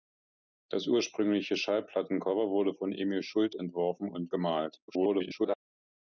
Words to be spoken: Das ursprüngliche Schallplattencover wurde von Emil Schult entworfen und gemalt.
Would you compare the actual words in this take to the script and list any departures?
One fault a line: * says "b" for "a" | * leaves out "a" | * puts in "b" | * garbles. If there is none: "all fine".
* garbles